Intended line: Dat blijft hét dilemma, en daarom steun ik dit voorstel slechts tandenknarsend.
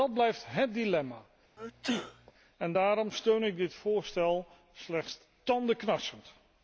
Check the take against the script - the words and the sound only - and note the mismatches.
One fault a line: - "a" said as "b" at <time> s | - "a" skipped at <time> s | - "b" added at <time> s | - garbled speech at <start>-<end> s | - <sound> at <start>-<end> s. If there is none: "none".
- sneeze at 1.6-2.3 s